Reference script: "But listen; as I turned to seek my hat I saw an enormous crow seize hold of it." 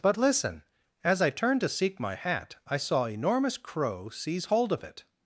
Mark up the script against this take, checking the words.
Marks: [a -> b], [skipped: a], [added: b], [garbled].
"But listen; as I turned to seek my hat I saw [skipped: an] enormous crow seize hold of it."